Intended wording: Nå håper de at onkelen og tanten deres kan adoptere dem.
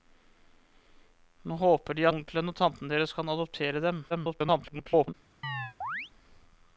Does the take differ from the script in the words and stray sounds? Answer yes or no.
yes